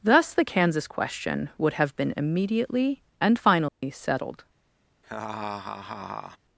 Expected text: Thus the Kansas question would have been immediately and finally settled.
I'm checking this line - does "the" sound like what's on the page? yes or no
yes